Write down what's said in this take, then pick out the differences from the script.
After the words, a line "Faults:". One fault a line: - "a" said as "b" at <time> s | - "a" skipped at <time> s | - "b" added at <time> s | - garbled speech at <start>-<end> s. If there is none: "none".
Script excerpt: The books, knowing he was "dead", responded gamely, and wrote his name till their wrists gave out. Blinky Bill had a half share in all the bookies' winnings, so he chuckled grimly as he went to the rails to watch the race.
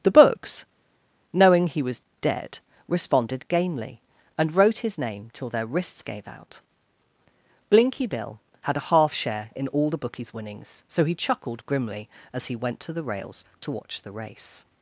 The books, knowing he was "dead", responded gamely, and wrote his name till their wrists gave out. Blinky Bill had a half share in all the bookies' winnings, so he chuckled grimly as he went to the rails to watch the race.
Faults:
none